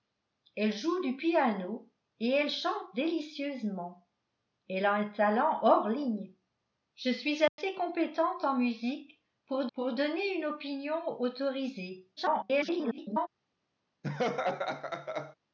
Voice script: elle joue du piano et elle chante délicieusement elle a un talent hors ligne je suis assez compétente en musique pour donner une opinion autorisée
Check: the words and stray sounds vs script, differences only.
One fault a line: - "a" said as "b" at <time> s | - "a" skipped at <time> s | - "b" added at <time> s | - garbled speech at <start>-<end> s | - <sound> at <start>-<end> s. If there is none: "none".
- dropout at 7.5-7.6 s
- "pour" added at 9.7 s
- garbled speech at 12.2-13.3 s
- laugh at 14.0-15.4 s